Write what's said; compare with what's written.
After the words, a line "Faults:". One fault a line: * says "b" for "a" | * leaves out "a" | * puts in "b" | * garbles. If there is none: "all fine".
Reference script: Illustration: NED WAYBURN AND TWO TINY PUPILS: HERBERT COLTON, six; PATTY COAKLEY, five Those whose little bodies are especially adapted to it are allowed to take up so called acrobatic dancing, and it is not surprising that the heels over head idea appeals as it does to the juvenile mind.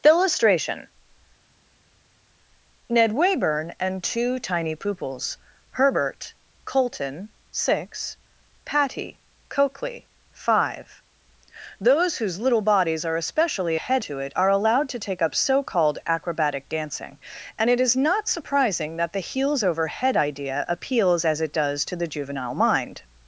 Illustration: NED WAYBURN AND TWO TINY PUPILS: HERBERT COLTON, six; PATTY COAKLEY, five Those whose little bodies are especially head to it are allowed to take up so called acrobatic dancing, and it is not surprising that the heels over head idea appeals as it does to the juvenile mind.
Faults:
* says "head" for "adapted"